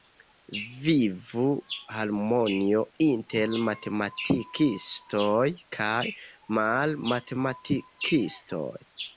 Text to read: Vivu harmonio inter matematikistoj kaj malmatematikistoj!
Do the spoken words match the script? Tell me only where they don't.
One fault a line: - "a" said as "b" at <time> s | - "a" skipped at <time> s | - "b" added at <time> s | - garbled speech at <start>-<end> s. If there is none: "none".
none